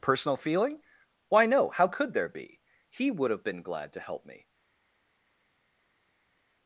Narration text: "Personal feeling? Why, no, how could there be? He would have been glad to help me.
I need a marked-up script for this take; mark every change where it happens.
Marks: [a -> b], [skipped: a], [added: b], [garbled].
"Personal feeling? Why, no, how could there be? He would have been glad to help me.